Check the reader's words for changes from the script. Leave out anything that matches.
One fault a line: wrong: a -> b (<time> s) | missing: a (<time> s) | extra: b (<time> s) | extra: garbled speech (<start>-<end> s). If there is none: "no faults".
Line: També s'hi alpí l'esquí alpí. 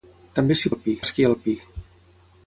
no faults